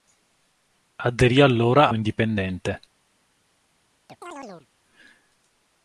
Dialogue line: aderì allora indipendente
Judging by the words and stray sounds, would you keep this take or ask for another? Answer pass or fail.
fail